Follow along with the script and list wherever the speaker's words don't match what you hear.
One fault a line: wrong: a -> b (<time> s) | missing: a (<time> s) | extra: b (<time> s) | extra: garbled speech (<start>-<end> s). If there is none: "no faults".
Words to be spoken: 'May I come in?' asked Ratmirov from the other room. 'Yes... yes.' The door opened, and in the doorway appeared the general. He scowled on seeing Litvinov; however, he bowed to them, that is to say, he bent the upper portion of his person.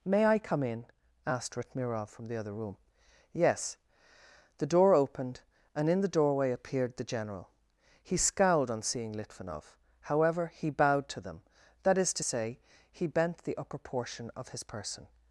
missing: yes (3.8 s)